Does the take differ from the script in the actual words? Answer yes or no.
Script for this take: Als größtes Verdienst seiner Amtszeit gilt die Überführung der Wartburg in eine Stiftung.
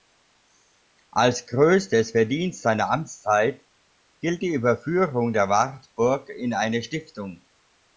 no